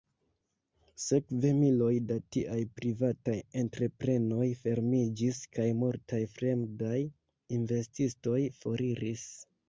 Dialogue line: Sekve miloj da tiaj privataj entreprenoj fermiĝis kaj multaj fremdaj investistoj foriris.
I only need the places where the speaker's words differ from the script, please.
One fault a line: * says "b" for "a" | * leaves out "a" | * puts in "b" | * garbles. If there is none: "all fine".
all fine